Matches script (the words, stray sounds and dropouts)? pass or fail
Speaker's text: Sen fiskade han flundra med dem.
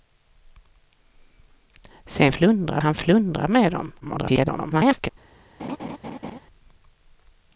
fail